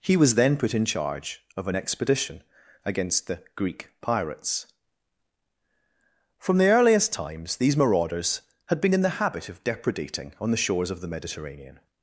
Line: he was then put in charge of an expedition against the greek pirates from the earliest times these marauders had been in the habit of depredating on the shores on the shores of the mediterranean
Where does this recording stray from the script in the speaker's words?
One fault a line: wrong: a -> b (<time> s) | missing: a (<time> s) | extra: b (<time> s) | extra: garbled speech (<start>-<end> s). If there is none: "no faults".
missing: on the shores (10.9 s)